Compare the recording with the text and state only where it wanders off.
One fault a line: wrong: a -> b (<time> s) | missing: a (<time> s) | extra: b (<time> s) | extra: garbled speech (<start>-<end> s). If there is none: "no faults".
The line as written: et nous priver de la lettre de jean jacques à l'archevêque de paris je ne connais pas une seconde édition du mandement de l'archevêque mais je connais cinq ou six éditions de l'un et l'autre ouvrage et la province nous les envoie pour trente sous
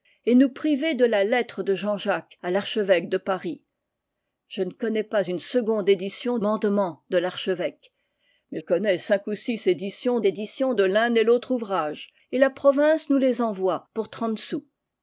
missing: du (6.4 s)
missing: je (8.6 s)
extra: éditions (10.2 s)